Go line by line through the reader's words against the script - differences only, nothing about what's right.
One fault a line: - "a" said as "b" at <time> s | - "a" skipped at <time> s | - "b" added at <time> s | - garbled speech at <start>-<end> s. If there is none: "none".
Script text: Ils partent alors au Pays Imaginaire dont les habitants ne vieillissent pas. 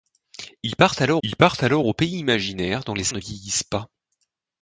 - "ils partent alors" added at 1.2 s
- "habitants" skipped at 3.1 s